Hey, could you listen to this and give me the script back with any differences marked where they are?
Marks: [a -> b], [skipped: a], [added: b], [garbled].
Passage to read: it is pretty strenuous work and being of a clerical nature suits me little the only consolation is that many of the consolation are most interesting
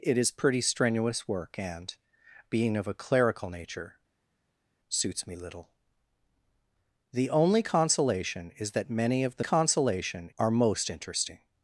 it is pretty strenuous work and being of a clerical nature suits me little the only consolation is that many of the consolation are most interesting